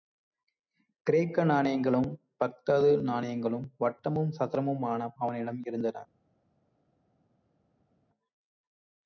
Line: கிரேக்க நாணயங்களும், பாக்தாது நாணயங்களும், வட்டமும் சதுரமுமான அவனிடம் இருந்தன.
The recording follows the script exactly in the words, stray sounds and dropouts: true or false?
true